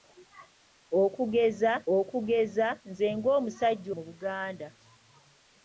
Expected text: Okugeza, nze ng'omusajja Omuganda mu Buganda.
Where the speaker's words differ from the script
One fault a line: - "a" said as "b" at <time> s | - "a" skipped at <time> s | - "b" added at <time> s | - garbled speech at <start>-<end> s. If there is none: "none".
- "okugeza" added at 2.0 s
- "Omuganda" skipped at 3.9 s